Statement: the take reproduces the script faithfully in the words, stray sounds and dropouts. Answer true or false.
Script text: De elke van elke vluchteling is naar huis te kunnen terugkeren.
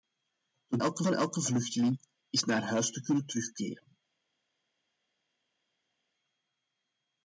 true